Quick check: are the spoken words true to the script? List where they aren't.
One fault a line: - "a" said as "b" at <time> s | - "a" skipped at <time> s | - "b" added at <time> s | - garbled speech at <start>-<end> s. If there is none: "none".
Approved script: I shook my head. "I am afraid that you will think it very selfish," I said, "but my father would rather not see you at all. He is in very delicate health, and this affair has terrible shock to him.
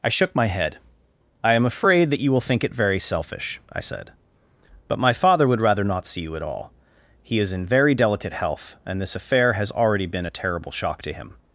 - "already been a" added at 9.7 s